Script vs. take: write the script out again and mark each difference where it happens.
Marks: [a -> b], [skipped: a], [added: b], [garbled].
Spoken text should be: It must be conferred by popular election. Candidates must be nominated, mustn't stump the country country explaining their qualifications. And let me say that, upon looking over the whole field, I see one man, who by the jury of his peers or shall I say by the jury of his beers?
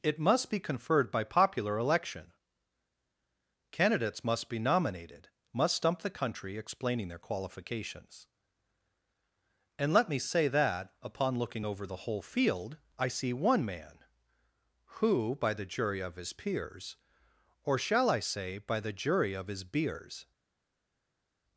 It must be conferred by popular election. Candidates must be nominated, [mustn't -> must] stump the country [skipped: country] explaining their qualifications. And let me say that, upon looking over the whole field, I see one man, who by the jury of his peers or shall I say by the jury of his beers?